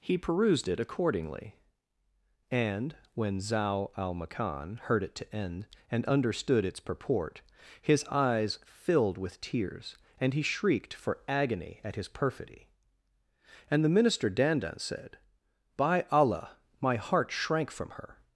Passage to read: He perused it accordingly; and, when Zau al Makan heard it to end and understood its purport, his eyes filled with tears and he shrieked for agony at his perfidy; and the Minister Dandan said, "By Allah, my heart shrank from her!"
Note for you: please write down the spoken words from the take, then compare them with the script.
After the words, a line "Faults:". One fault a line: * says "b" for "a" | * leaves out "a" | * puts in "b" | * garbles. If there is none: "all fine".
He perused it accordingly; and, when Zau al Makan heard it to end and understood its purport, his eyes filled with tears and he shrieked for agony at his perfidy; and the Minister Dandan said, "By Allah, my heart shrank from her!"
Faults:
all fine